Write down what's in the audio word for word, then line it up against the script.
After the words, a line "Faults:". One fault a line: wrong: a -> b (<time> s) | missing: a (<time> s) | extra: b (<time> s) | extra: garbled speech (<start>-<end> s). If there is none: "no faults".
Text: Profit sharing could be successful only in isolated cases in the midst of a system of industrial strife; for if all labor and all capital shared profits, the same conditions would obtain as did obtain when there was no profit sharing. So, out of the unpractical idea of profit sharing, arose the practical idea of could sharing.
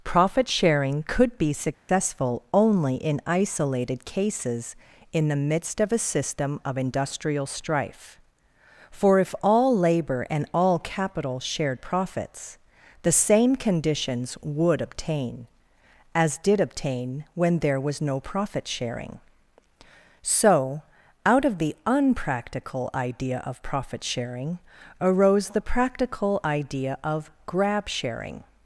Profit sharing could be successful only in isolated cases in the midst of a system of industrial strife; for if all labor and all capital shared profits, the same conditions would obtain as did obtain when there was no profit sharing. So, out of the unpractical idea of profit sharing, arose the practical idea of grab sharing.
Faults:
wrong: could -> grab (27.4 s)